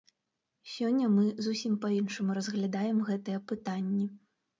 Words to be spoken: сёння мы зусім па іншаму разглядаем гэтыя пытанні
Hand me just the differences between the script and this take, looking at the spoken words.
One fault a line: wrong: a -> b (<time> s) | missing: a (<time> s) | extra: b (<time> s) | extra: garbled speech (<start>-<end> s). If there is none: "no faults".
no faults